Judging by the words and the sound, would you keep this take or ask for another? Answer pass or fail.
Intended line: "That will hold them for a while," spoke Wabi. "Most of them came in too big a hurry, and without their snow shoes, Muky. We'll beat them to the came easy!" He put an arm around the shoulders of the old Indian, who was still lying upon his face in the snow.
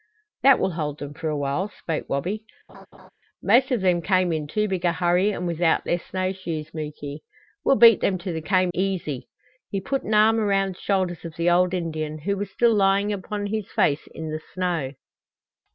fail